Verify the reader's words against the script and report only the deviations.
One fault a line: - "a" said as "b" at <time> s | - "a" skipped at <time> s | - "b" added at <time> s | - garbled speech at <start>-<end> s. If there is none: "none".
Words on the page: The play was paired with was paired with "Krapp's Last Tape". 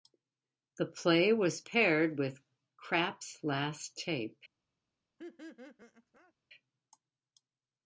- "was paired with" skipped at 2.4 s